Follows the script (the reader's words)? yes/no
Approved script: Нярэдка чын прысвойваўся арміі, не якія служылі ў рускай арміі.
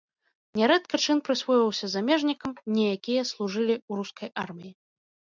no